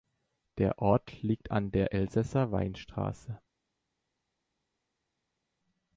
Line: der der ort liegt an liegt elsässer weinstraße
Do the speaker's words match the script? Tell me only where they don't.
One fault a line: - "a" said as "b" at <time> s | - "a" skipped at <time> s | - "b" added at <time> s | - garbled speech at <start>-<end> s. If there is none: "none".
- "der" skipped at 0.8 s
- "liegt" said as "der" at 1.7 s